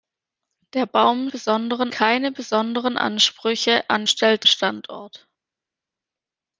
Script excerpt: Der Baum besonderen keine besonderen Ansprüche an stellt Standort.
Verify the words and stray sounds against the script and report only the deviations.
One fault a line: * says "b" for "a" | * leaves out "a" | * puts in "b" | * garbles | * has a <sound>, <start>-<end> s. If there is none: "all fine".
all fine